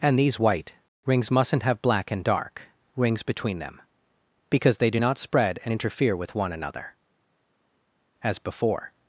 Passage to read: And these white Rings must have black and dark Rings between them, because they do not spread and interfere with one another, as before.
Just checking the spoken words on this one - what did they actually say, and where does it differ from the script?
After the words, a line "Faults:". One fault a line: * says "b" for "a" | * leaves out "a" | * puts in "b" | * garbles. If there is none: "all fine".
And these white Rings mustn't have black and dark Rings between them, because they do not spread and interfere with one another, as before.
Faults:
* says "mustn't" for "must"